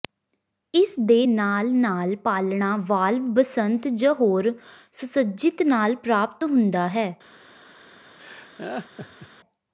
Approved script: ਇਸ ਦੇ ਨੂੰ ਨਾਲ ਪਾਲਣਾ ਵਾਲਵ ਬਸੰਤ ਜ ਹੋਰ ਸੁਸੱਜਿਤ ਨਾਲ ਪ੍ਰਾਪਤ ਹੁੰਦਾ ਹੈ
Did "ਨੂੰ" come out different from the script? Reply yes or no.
yes